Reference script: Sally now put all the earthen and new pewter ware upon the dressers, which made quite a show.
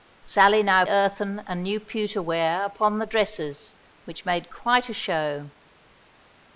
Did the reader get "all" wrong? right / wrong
wrong